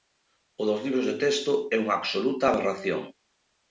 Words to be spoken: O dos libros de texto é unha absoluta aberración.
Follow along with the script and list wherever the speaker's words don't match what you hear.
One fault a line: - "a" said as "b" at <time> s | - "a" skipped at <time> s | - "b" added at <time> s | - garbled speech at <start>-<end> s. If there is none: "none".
none